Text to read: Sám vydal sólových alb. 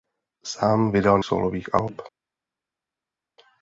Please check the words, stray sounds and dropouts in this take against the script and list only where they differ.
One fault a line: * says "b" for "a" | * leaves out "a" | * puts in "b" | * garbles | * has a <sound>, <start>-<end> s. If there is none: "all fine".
all fine